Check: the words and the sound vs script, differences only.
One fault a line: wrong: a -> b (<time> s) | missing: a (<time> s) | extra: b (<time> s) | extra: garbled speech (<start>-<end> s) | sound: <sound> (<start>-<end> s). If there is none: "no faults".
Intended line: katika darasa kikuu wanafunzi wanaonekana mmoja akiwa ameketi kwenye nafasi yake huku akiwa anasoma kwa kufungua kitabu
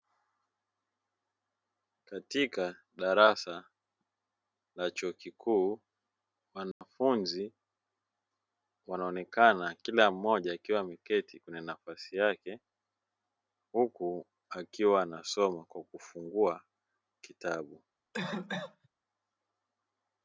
extra: la chuo (4.8 s)
sound: dropout (6.7-6.8 s)
extra: kila (9.8 s)
sound: cough (18.1-18.9 s)